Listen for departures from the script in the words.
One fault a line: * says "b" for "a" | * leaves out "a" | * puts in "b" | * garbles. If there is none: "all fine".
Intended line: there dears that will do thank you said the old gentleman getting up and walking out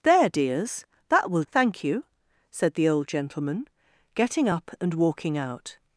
* leaves out "do"